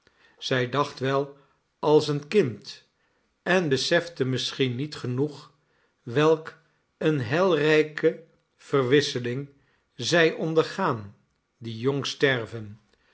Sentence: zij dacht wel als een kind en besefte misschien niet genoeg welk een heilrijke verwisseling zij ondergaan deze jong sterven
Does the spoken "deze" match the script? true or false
false